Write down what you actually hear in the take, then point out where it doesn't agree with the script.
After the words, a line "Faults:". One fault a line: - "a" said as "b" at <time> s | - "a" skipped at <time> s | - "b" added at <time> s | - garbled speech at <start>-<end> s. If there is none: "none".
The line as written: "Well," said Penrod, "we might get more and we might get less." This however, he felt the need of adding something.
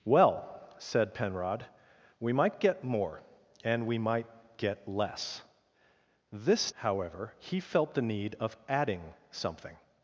"Well," said Penrod, "we might get more and we might get less." This however, he felt the need of adding something.
Faults:
none